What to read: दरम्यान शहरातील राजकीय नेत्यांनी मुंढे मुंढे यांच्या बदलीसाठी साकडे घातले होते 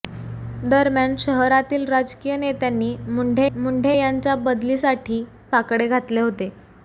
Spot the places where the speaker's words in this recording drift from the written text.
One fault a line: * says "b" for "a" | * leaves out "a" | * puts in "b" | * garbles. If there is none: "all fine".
all fine